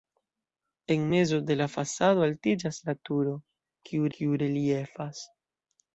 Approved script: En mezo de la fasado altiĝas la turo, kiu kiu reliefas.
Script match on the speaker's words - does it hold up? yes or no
yes